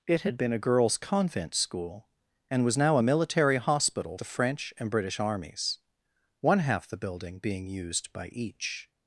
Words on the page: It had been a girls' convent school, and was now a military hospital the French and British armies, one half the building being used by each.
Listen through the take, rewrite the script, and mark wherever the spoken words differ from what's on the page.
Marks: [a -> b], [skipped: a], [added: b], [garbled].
It had been a girls' convent school, and was now a military hospital the French and British armies, one half the building being used by each.